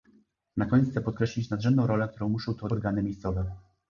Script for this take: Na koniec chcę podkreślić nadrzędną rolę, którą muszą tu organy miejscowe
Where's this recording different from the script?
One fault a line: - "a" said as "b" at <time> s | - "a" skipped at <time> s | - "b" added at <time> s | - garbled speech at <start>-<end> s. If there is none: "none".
none